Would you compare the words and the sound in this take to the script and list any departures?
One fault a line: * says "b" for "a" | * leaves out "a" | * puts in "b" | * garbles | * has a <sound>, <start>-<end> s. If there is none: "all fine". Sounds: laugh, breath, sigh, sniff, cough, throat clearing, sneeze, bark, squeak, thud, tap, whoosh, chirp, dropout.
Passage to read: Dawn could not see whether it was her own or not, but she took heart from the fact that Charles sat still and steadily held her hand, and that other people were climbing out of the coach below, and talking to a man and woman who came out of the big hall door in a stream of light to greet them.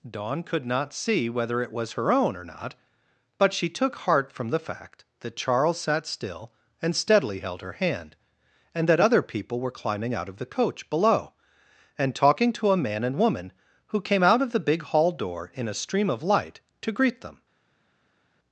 all fine